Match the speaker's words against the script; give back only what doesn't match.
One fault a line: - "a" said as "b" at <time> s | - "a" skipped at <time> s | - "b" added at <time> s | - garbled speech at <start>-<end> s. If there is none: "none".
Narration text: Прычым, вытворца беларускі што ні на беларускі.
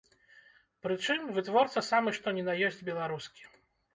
- "беларускі" said as "самы" at 1.9 s
- "ёсць" added at 2.7 s